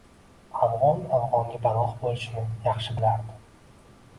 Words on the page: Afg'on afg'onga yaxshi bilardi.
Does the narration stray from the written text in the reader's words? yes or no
yes